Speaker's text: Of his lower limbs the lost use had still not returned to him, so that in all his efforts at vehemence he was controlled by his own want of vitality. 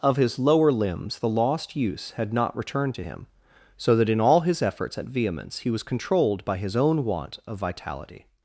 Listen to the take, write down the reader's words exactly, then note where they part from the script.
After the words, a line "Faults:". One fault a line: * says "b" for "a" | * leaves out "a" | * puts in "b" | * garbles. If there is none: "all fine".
Of his lower limbs the lost use had not returned to him, so that in all his efforts at vehemence he was controlled by his own want of vitality.
Faults:
* leaves out "still"